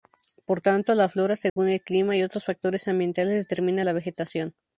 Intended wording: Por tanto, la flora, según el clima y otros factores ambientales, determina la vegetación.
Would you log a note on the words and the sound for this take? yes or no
yes